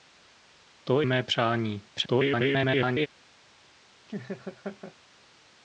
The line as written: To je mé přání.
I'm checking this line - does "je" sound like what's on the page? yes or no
no